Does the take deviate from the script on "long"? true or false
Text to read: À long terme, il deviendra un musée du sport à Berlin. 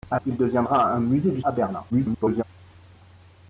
true